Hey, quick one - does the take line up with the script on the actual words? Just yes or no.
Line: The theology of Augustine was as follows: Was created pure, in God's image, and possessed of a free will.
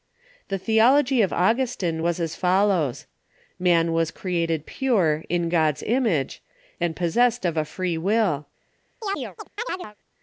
no